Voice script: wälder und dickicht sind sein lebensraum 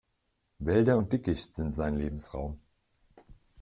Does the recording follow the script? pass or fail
pass